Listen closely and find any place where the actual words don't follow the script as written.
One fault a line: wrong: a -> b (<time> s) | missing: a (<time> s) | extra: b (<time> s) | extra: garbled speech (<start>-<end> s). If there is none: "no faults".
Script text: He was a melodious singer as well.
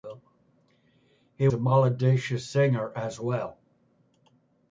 missing: was (1.5 s)